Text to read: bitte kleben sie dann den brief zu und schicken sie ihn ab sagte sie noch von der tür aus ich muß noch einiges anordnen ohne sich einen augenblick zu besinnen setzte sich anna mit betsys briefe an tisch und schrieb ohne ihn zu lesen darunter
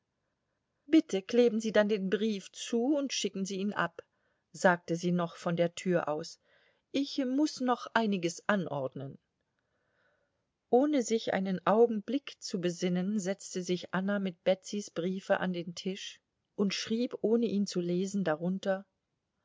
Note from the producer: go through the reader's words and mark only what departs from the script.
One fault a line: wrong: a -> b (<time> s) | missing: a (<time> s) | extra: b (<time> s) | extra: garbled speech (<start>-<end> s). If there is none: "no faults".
extra: den (15.5 s)